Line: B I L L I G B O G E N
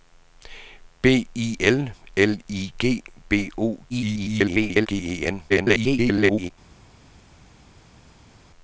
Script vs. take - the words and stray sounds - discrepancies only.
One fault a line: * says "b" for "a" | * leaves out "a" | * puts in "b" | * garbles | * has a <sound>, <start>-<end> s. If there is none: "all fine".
* garbles
* garbles